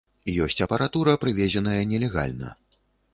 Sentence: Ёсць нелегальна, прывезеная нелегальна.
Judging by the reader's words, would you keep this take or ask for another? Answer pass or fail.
fail